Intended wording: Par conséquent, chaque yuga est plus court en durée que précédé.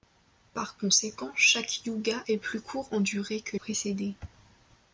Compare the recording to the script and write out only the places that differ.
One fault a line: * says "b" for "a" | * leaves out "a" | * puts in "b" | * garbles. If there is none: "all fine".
all fine